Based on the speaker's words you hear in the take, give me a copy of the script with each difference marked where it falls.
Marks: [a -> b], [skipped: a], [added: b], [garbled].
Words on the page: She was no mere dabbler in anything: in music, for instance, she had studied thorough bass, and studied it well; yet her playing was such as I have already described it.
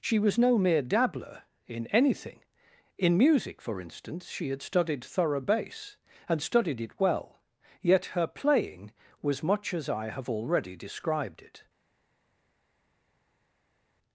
She was no mere dabbler in anything: in music, for instance, she had studied thorough bass, and studied it well; yet her playing was [such -> much] as I have already described it.